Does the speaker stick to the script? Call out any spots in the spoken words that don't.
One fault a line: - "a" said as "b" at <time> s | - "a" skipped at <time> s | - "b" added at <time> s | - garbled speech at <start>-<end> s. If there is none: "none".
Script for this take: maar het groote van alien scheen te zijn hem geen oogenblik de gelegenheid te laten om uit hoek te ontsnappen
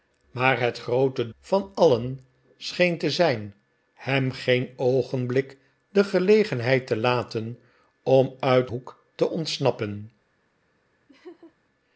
none